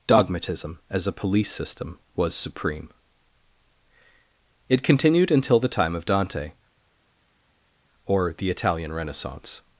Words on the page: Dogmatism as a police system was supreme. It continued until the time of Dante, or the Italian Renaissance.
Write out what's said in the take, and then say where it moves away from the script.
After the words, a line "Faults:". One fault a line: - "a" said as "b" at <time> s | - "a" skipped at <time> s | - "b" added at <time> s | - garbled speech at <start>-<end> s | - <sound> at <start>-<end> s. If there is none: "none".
Dogmatism as a police system was supreme. It continued until the time of Dante, or the Italian Renaissance.
Faults:
none